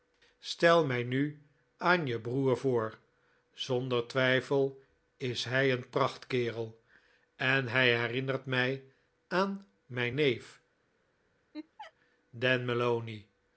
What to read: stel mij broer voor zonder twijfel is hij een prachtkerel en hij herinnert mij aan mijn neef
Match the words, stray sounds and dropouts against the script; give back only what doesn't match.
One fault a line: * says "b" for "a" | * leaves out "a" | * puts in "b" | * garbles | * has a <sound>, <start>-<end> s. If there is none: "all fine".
* puts in "nu aan je"
* has a laugh, 11.5-11.9 s